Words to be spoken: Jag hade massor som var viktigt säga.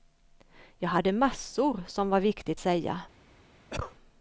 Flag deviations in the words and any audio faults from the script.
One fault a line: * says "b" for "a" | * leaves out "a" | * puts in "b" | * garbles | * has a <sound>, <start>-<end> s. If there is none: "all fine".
* has a cough, 3.7-3.9 s